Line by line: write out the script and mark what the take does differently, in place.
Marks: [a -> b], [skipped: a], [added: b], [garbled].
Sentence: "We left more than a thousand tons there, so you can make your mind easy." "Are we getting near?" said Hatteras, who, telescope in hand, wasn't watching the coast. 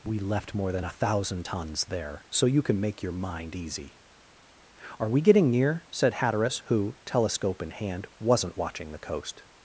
"We left more than a thousand tons there, so you can make your mind easy." "Are we getting near?" said Hatteras, who, telescope in hand, wasn't watching the coast.